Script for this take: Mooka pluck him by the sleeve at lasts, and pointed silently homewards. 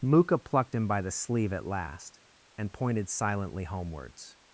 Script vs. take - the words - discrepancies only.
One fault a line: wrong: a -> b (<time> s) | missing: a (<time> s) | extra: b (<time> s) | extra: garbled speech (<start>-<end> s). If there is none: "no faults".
wrong: pluck -> plucked (0.4 s)
wrong: lasts -> last (1.7 s)